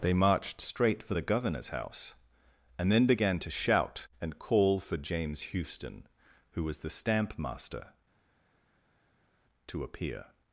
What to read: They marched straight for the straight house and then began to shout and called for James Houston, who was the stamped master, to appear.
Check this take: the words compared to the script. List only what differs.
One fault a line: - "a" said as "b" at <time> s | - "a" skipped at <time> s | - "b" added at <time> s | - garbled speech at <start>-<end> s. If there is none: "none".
- "straight" said as "governor's" at 1.2 s
- "called" said as "call" at 4.4 s
- "stamped" said as "stamp" at 6.9 s